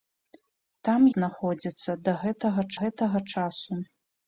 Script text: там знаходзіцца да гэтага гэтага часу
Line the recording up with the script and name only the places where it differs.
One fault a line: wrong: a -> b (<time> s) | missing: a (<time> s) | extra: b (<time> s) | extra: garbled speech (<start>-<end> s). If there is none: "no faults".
no faults